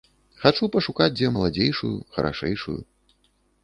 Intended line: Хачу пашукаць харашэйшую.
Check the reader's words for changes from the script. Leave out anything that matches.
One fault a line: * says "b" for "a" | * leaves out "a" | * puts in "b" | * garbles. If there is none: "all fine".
* puts in "дзе маладзейшую"